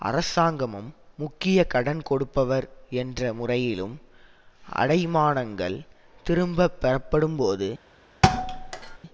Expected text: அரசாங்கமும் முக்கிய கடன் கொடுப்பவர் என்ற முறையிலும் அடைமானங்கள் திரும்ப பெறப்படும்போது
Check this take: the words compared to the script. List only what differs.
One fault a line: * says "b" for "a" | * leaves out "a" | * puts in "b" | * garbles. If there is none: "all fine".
all fine